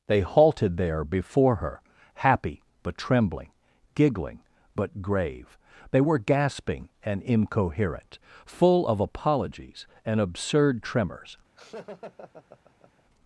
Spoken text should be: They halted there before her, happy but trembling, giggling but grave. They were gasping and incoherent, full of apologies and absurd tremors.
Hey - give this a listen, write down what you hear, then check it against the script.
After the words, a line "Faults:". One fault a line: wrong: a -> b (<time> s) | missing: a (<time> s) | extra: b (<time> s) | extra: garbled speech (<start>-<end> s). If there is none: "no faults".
They halted there before her, happy but trembling, giggling but grave. They were gasping and incoherent, full of apologies and absurd tremors.
Faults:
no faults